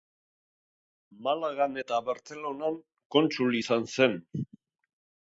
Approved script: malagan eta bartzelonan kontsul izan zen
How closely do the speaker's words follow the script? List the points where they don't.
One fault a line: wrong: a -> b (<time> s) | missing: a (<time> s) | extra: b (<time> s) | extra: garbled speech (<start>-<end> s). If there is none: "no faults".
no faults